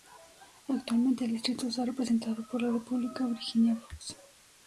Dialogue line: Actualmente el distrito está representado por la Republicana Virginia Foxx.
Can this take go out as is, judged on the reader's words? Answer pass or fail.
pass